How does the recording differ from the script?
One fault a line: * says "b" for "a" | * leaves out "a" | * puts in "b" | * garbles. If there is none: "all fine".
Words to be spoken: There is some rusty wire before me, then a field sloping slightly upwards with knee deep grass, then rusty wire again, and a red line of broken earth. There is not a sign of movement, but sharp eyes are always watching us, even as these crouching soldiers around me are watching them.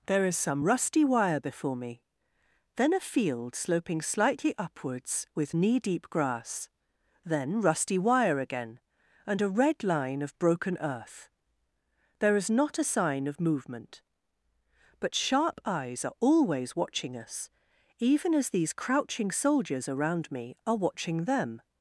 all fine